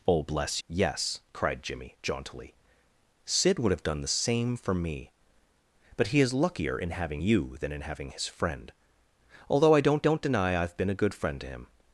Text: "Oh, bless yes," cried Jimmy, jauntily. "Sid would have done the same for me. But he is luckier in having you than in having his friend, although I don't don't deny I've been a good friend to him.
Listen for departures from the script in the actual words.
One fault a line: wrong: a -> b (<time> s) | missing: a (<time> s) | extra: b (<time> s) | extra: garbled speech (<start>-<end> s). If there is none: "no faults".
no faults